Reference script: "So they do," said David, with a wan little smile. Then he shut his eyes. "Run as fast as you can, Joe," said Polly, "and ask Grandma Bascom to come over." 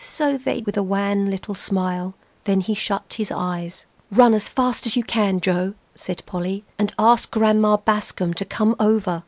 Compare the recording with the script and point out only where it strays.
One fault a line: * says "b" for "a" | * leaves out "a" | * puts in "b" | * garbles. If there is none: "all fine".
* leaves out "do said David"